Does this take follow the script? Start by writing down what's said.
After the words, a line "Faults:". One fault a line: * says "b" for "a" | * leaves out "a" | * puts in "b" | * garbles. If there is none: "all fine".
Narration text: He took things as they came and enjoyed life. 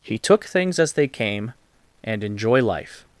He took things as they came and enjoy life.
Faults:
* says "enjoy" for "enjoyed"